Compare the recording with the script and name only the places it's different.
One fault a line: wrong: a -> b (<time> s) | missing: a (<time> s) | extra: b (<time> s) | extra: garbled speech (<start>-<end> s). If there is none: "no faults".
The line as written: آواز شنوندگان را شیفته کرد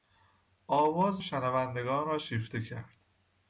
no faults